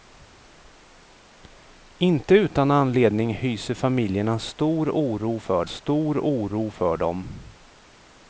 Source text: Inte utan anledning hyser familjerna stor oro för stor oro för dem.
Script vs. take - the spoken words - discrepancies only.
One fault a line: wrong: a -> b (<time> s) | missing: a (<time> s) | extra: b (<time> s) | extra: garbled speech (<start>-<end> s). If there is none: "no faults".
no faults